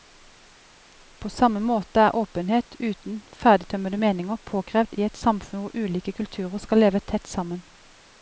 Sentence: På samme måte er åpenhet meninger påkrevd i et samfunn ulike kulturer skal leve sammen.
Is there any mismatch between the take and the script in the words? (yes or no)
yes